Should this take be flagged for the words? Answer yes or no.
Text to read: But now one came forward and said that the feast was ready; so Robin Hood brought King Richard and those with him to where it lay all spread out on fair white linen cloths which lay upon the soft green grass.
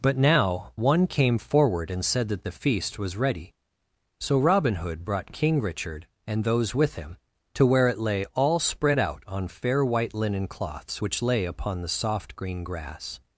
no